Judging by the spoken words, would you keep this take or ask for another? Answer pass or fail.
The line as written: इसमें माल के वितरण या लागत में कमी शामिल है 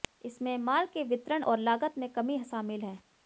fail